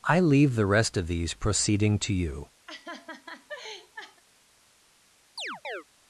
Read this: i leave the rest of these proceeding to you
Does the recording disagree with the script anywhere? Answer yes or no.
no